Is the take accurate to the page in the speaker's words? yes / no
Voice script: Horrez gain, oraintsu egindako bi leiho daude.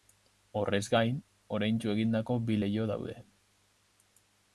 yes